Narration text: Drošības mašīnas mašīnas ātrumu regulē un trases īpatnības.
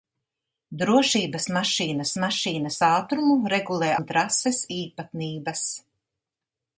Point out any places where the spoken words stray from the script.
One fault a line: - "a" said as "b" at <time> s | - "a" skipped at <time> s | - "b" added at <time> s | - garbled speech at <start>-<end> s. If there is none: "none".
none